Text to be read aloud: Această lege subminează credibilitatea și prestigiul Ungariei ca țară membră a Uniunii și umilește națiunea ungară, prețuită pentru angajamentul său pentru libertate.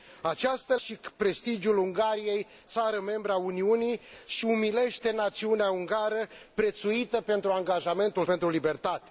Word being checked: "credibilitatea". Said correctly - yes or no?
no